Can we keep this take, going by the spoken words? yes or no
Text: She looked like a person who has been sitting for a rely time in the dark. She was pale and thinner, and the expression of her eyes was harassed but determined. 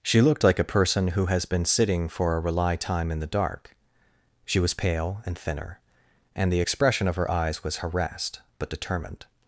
yes